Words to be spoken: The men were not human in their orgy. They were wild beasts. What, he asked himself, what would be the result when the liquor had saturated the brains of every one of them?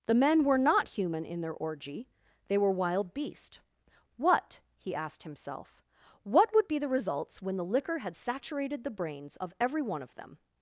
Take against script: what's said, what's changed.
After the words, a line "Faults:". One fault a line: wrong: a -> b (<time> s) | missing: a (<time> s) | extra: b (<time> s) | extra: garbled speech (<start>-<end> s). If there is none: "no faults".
The men were not human in their orgy. They were wild beast. What, he asked himself, what would be the results when the liquor had saturated the brains of every one of them?
Faults:
wrong: beasts -> beast (3.1 s)
wrong: result -> results (6.9 s)